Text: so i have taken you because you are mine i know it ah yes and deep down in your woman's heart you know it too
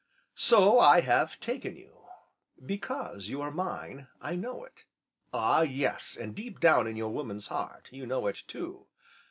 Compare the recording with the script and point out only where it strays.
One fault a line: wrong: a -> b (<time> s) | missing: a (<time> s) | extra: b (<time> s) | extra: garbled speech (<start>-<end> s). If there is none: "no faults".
no faults